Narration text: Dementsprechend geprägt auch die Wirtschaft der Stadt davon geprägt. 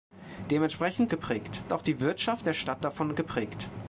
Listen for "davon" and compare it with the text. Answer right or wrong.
right